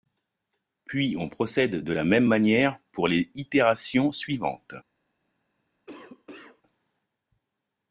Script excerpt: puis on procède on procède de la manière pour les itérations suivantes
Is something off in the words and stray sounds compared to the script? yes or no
yes